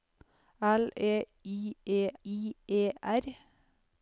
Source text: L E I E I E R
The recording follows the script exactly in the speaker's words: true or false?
true